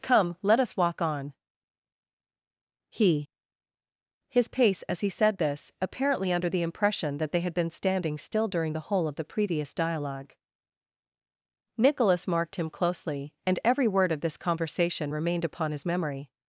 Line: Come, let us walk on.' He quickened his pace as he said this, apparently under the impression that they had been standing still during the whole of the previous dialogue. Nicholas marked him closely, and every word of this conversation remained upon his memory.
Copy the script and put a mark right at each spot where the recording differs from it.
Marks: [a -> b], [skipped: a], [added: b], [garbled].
Come, let us walk on.' He [skipped: quickened] his pace as he said this, apparently under the impression that they had been standing still during the whole of the previous dialogue. Nicholas marked him closely, and every word of this conversation remained upon his memory.